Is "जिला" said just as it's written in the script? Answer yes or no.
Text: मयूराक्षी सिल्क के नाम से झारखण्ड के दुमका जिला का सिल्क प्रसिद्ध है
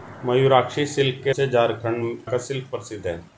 no